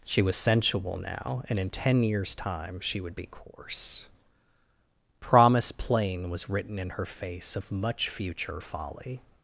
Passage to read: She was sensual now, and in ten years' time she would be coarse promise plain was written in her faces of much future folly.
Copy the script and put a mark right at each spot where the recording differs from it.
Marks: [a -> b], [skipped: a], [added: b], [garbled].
She was sensual now, and in ten years' time she would be coarse promise plain was written in her [faces -> face] of much future folly.